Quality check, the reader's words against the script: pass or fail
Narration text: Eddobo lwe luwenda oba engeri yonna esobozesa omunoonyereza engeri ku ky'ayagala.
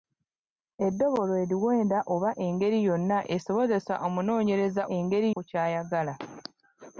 pass